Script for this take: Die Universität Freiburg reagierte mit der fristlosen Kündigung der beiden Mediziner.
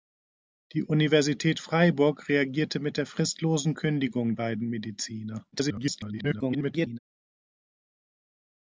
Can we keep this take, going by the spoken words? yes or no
no